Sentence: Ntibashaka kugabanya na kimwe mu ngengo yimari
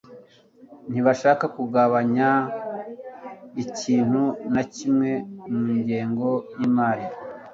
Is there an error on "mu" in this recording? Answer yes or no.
no